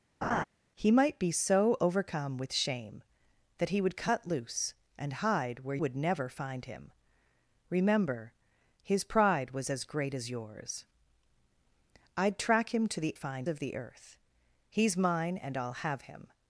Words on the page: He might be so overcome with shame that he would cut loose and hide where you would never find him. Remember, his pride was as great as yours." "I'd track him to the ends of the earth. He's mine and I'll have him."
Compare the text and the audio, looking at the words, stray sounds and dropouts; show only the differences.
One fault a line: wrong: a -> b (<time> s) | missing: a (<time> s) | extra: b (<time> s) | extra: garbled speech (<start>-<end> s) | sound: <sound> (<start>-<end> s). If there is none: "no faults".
sound: laugh (0.2-0.4 s)
missing: you (5.8 s)
wrong: ends -> find (13.1 s)